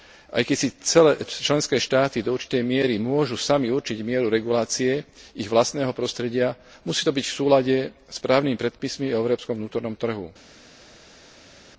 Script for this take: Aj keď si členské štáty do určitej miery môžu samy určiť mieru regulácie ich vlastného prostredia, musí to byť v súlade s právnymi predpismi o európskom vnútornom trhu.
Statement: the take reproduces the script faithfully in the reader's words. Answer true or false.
true